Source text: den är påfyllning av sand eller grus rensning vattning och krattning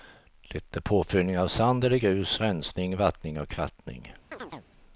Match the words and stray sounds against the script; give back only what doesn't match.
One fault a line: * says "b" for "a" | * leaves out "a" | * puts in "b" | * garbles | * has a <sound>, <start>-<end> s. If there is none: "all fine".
* says "det" for "den"
* has a chirp, 4.3-4.7 s